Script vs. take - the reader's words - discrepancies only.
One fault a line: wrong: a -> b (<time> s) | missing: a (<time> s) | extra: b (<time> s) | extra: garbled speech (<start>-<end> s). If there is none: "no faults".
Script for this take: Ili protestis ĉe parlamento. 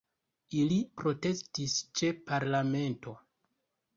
no faults